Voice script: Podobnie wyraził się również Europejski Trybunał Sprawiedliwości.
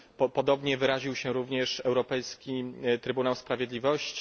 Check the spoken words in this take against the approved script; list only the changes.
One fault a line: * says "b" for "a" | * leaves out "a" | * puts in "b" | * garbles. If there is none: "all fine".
all fine